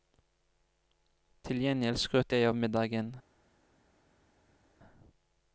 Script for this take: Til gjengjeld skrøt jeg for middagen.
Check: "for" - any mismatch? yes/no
yes